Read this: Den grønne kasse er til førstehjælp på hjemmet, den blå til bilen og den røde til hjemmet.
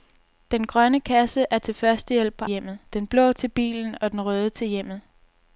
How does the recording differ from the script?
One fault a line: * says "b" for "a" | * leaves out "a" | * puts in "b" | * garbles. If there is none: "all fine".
all fine